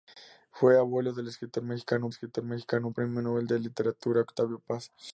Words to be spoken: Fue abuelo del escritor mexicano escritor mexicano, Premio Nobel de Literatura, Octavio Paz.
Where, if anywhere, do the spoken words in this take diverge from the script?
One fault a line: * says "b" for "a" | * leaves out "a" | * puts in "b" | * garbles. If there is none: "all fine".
all fine